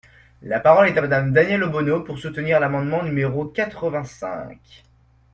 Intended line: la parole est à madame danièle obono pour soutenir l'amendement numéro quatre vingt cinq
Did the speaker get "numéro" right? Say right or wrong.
right